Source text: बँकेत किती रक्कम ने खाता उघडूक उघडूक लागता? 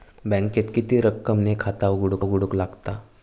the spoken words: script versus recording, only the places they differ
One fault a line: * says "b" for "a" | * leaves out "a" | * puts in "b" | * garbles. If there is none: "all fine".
all fine